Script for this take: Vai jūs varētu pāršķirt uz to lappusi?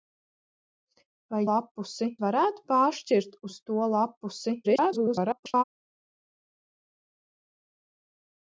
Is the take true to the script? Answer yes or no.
no